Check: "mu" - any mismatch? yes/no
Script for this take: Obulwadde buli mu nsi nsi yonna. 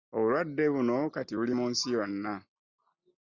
no